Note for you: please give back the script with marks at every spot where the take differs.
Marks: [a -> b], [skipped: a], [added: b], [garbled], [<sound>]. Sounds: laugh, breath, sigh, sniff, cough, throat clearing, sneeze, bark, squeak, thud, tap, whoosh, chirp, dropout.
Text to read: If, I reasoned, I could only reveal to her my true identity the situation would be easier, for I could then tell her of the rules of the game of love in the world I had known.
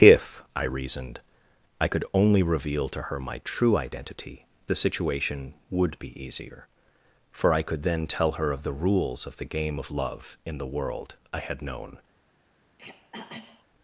If, I reasoned, I could only reveal to her my true identity the situation would be easier, for I could then tell her of the rules of the game of love in the world I had known. [throat clearing]